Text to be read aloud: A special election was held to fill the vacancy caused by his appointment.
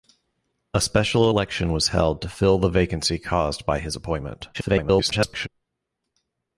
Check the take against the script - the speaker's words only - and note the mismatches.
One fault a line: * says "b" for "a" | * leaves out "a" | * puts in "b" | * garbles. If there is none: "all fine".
* garbles